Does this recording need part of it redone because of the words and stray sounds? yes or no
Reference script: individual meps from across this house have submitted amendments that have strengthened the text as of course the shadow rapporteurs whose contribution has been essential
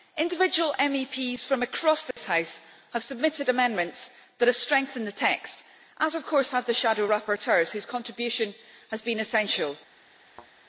yes